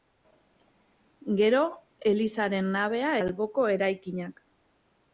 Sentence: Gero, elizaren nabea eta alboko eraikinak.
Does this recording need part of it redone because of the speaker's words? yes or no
yes